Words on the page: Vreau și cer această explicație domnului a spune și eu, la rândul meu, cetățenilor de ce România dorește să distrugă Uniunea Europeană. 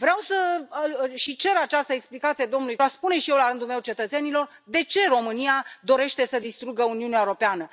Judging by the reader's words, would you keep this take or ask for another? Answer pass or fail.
pass